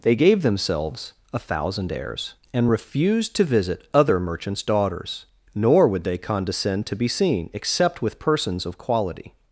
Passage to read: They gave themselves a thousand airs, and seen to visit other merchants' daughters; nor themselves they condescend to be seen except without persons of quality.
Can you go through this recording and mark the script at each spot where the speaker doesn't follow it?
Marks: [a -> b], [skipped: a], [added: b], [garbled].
They gave themselves a thousand airs, and [seen -> refused] to visit other merchants' daughters; nor [themselves -> would] they condescend to be seen except [without -> with] persons of quality.